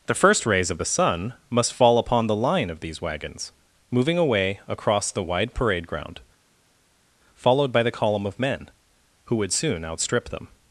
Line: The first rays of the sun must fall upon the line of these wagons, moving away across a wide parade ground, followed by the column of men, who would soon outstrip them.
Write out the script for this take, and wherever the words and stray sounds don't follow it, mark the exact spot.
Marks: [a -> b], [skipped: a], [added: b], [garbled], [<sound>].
The first rays of the sun must fall upon the line of these wagons, moving away across [a -> the] wide parade ground, followed by the column of men, who would soon outstrip them.